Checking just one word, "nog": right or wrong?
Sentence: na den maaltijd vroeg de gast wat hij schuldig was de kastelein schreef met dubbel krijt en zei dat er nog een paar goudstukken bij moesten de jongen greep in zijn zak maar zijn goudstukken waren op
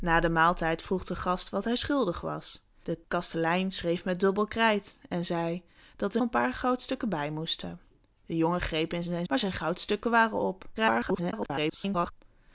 wrong